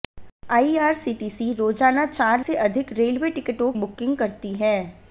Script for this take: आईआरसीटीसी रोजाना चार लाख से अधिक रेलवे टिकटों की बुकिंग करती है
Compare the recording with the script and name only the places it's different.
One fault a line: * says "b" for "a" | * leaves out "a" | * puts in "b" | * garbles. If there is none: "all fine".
* leaves out "लाख"
* leaves out "की"